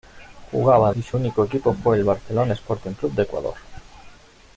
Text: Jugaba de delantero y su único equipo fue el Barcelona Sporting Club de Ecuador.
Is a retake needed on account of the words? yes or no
yes